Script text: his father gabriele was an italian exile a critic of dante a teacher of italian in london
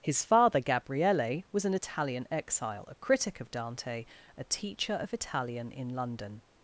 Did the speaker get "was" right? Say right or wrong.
right